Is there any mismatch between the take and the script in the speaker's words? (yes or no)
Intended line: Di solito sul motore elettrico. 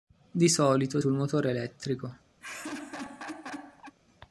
no